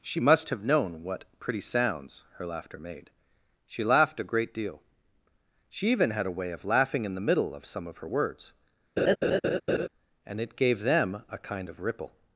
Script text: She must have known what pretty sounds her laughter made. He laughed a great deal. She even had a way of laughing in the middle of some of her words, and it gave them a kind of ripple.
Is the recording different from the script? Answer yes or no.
yes